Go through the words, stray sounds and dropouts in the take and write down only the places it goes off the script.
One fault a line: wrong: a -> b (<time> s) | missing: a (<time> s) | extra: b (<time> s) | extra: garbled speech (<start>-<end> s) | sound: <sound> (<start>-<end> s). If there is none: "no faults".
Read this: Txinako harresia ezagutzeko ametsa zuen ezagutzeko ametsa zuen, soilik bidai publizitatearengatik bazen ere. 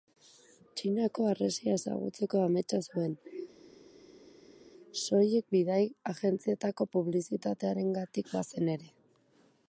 missing: ezagutzeko ametsa zuen (3.2 s)
extra: agentzietako (6.1 s)